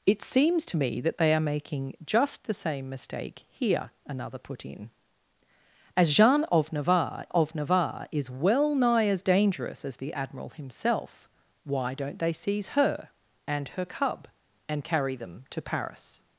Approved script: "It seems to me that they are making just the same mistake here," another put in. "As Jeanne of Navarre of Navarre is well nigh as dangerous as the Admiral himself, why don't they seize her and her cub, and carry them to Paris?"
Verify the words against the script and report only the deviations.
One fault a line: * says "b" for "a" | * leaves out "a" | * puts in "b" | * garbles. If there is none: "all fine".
all fine